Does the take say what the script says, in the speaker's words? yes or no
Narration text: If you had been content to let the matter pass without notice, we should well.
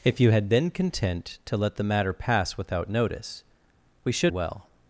yes